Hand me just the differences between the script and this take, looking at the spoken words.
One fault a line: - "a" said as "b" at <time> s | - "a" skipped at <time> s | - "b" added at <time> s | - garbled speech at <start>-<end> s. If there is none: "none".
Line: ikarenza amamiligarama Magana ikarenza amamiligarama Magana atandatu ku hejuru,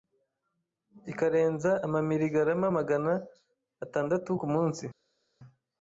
- "ikarenza amamiligarama Magana" skipped at 3.1 s
- "hejuru" said as "munsi" at 4.5 s